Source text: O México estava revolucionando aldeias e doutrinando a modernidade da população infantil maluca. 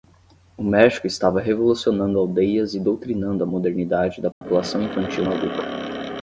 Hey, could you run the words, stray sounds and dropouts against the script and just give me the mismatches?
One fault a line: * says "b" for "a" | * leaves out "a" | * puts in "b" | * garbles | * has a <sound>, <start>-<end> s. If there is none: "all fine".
* has a dropout, 4.3-4.4 s